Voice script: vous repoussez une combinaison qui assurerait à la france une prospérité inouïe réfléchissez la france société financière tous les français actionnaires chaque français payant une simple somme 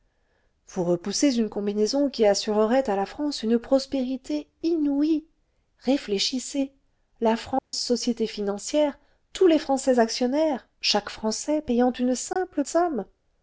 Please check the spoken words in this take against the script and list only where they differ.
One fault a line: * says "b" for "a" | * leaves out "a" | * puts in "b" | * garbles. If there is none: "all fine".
all fine